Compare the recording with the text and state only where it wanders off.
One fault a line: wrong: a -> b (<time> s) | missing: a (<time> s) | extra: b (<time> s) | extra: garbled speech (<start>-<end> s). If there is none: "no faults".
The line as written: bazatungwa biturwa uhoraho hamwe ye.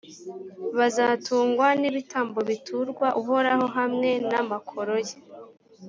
extra: n'ibitambo (1.8 s)
extra: n'amakoro (4.3 s)